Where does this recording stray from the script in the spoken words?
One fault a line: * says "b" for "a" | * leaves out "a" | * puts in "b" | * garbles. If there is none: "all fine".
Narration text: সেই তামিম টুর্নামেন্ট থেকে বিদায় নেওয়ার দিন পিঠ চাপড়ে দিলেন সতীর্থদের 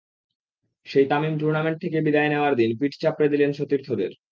all fine